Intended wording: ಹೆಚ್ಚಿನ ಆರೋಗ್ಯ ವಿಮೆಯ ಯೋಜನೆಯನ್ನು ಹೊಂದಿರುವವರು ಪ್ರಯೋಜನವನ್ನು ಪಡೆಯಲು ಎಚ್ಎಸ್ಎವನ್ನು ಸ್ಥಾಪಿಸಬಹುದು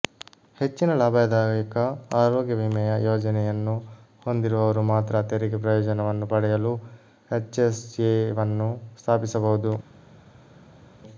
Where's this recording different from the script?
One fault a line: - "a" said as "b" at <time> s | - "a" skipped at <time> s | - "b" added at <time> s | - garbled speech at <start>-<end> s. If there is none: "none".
- "ಲಾಭದಾಯಕ" added at 1.0 s
- "ಮಾತ್ರ ತೆರಿಗೆ" added at 4.9 s